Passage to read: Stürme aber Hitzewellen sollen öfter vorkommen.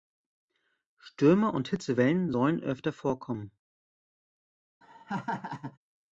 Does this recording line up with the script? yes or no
no